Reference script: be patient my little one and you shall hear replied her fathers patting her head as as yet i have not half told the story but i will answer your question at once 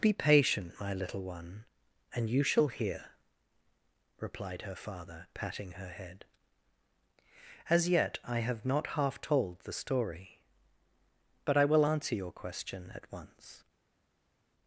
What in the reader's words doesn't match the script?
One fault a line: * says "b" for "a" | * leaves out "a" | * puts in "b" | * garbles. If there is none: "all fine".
* says "father" for "fathers"
* leaves out "as"